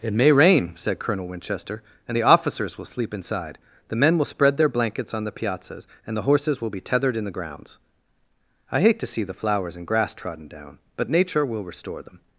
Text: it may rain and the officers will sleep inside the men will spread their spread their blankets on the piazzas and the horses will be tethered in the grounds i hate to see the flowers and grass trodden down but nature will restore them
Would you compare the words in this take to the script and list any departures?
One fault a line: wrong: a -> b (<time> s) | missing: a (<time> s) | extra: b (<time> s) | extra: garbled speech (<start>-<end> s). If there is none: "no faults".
extra: said colonel winchester (0.8 s)
missing: spread their (4.7 s)